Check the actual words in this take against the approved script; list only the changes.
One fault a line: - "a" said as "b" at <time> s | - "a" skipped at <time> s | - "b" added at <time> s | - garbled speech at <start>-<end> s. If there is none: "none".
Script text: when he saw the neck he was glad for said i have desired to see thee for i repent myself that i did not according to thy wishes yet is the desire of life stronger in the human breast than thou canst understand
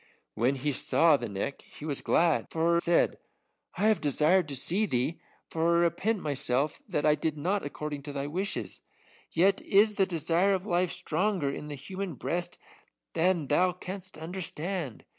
none